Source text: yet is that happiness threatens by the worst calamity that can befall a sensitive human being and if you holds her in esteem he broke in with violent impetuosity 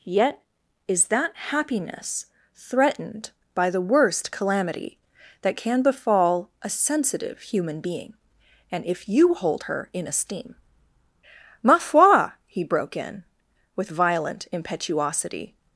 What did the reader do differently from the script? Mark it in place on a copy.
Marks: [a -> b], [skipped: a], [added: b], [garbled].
yet is that happiness [threatens -> threatened] by the worst calamity that can befall a sensitive human being and if you [holds -> hold] her in esteem [added: ma foi] he broke in with violent impetuosity